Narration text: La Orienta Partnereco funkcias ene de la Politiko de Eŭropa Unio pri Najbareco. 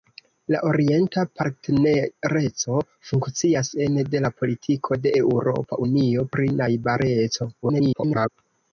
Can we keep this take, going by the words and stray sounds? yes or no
no